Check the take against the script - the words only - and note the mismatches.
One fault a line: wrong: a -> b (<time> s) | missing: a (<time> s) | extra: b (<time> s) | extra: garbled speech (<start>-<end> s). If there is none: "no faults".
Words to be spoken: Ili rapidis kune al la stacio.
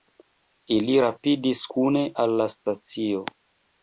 no faults